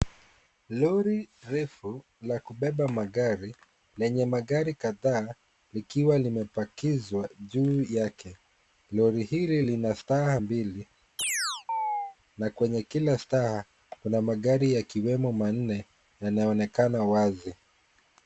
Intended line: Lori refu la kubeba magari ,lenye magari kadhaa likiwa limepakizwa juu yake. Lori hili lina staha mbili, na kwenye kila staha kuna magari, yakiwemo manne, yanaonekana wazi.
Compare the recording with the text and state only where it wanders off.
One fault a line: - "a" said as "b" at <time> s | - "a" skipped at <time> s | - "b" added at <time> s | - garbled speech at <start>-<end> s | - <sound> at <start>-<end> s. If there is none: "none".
- chirp at 11.2-12.2 s